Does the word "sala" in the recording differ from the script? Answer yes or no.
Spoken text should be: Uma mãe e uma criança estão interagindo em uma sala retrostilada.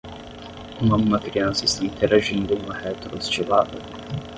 yes